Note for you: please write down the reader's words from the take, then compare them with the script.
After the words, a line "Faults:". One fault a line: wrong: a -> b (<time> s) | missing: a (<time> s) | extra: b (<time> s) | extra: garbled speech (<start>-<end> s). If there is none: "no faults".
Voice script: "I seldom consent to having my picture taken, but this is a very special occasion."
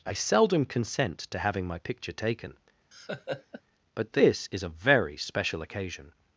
"I seldom consent to having my picture taken, but this is a very special occasion."
Faults:
no faults